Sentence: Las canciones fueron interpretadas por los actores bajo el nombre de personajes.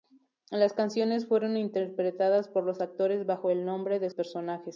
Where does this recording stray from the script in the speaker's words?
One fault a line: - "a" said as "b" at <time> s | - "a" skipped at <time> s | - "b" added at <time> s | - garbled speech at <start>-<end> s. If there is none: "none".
none